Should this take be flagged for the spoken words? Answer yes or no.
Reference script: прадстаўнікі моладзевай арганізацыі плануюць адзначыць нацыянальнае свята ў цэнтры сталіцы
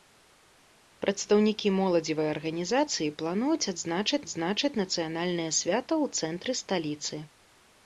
yes